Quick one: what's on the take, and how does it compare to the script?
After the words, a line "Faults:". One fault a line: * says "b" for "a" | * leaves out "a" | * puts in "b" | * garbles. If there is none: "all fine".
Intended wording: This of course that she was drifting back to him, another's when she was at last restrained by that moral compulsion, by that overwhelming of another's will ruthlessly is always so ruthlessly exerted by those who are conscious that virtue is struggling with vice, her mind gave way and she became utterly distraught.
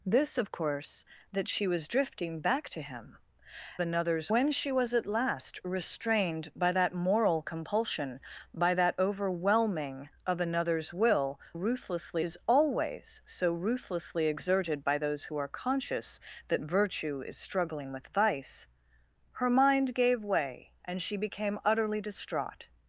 This of course that she was drifting back to him, another's when she was at last restrained by that moral compulsion, by that overwhelming of another's will ruthlessly is always so ruthlessly exerted by those who are conscious that virtue is struggling with vice, her mind gave way and she became utterly distraught.
Faults:
all fine